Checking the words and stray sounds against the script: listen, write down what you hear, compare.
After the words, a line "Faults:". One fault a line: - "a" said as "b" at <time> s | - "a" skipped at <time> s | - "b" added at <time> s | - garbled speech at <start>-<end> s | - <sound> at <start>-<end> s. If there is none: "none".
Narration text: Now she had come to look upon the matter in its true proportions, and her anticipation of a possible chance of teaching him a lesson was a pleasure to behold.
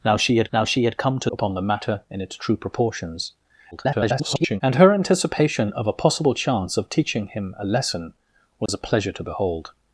Now she had now she had come to upon the matter in its true proportions, [garbled] and her anticipation of a possible chance of teaching him a lesson was a pleasure to behold.
Faults:
- "now she had" added at 0.5 s
- "look" skipped at 1.3 s
- garbled speech at 3.7-4.6 s
- dropout at 8.7-8.7 s